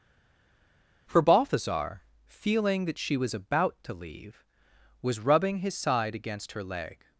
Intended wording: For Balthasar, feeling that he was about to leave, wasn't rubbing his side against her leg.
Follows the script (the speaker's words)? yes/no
no